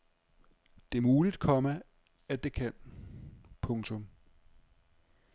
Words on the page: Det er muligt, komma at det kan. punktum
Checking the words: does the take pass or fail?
pass